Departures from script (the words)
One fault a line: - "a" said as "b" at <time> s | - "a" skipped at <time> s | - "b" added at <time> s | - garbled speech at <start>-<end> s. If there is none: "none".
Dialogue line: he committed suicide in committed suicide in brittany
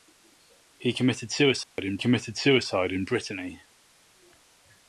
none